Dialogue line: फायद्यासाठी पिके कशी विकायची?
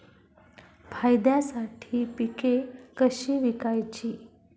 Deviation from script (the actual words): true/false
false